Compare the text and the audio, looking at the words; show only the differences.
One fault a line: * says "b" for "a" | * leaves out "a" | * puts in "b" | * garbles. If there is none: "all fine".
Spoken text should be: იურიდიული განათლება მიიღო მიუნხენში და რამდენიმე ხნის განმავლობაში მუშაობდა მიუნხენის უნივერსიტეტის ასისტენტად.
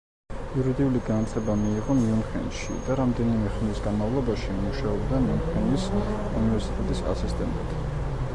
all fine